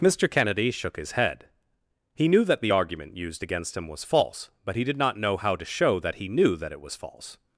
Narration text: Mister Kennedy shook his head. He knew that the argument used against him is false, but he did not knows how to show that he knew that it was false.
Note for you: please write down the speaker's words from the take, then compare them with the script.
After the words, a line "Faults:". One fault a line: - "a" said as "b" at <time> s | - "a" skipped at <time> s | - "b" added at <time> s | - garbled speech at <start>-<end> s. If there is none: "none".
Mister Kennedy shook his head. He knew that the argument used against him was false, but he did not know how to show that he knew that it was false.
Faults:
- "is" said as "was" at 3.9 s
- "knows" said as "know" at 5.2 s